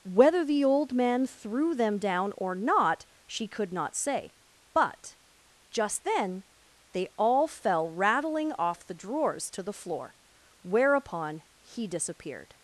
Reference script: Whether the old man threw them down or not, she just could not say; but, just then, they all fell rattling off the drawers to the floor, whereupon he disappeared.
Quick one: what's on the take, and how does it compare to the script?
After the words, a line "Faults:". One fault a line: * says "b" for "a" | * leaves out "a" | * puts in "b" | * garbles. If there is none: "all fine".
Whether the old man threw them down or not, she could not say; but, just then, they all fell rattling off the drawers to the floor, whereupon he disappeared.
Faults:
* leaves out "just"